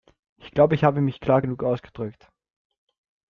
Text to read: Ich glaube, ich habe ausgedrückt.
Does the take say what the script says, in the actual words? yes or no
no